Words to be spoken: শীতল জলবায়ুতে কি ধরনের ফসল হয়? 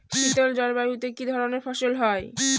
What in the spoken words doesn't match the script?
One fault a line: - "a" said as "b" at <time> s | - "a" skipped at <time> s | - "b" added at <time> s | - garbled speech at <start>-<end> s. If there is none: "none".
none